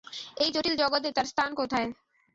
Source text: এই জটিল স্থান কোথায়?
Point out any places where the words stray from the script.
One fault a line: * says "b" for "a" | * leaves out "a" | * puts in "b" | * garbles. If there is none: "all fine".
* puts in "জগতে তার"